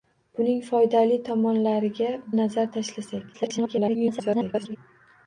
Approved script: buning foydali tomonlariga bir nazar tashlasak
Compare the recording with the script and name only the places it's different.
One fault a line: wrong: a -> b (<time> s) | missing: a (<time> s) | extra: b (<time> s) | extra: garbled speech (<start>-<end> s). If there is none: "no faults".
missing: bir (2.1 s)
extra: garbled speech (3.3-4.8 s)